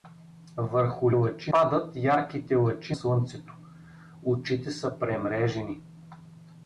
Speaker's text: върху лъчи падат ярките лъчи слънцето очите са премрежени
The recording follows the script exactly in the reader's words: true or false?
true